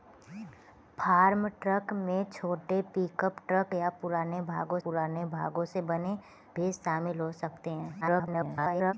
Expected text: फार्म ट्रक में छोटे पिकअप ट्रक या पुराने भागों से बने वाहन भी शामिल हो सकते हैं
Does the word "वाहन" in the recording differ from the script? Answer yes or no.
yes